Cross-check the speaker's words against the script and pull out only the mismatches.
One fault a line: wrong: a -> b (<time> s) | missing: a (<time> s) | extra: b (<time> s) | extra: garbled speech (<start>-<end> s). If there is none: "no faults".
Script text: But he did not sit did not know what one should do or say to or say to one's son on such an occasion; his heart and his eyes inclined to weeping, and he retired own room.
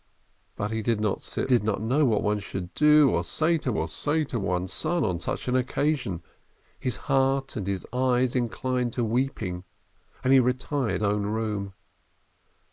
no faults